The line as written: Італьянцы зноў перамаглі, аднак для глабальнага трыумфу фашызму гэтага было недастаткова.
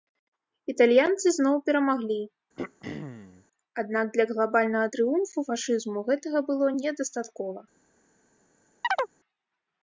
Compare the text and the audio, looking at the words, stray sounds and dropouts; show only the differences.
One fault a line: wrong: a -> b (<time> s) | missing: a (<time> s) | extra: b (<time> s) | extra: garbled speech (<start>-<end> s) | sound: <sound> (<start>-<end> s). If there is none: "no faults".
sound: throat clearing (2.6-3.5 s)
sound: chirp (8.8-9.1 s)